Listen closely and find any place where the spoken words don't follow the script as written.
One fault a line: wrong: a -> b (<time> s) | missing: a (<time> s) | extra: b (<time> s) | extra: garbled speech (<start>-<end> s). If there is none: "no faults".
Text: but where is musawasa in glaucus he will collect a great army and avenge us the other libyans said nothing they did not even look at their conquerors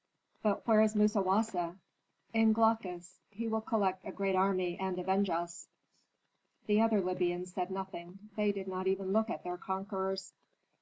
no faults